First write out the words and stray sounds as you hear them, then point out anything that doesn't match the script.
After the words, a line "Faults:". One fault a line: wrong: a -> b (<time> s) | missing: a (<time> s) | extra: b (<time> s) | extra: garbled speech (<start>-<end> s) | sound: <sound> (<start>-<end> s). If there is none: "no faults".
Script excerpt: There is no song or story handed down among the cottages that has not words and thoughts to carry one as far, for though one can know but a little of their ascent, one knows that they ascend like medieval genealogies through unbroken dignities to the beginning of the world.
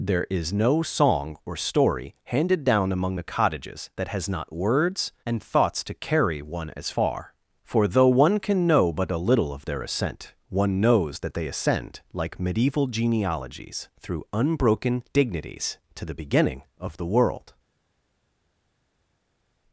There is no song or story handed down among the cottages that has not words and thoughts to carry one as far, for though one can know but a little of their ascent, one knows that they ascend like medieval genealogies through unbroken dignities to the beginning of the world.
Faults:
no faults